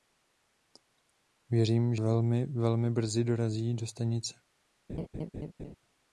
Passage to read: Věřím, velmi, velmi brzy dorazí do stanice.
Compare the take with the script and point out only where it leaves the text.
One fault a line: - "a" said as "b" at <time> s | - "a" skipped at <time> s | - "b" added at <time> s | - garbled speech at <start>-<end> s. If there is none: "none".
none